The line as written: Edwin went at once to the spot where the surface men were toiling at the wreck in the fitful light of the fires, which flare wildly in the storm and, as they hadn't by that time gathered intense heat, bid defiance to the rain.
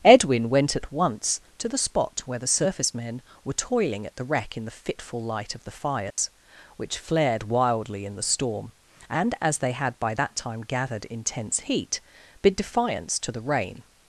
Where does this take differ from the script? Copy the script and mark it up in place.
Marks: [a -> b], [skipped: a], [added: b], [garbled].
Edwin went at once to the spot where the surface men were toiling at the wreck in the fitful light of the fires, which [flare -> flared] wildly in the storm and, as they [hadn't -> had] by that time gathered intense heat, bid defiance to the rain.